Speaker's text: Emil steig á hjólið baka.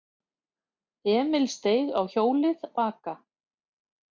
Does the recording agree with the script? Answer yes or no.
yes